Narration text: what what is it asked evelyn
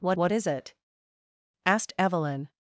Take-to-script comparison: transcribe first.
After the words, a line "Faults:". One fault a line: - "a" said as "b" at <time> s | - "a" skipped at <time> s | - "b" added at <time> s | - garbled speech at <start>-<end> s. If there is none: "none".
what what is it asked evelyn
Faults:
none